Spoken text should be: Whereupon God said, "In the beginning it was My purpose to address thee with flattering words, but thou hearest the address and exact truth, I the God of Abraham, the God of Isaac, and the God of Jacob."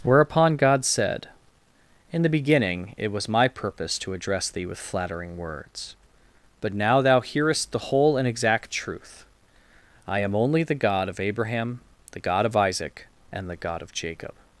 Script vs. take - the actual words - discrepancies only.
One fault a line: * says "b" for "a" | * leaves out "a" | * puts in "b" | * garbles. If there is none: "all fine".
* puts in "now"
* says "whole" for "address"
* puts in "am only"